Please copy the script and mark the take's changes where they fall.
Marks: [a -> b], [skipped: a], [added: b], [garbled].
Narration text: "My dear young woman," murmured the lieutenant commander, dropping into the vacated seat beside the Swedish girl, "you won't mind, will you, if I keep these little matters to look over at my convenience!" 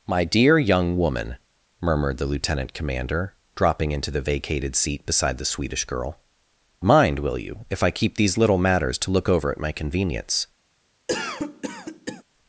"My dear young woman," murmured the lieutenant commander, dropping into the vacated seat beside the Swedish girl, [skipped: "you won't] mind, will you, if I keep these little matters to look over at my convenience!"